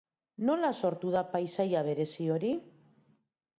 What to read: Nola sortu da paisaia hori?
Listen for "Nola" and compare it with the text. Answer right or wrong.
right